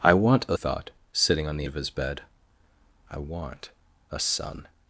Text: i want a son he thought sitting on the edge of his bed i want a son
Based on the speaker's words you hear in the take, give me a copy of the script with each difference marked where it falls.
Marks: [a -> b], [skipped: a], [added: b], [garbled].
i want a [skipped: son he] thought sitting on the [skipped: edge] of his bed i want a son